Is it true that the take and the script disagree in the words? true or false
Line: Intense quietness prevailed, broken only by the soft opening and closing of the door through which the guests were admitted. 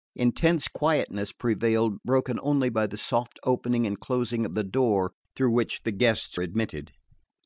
true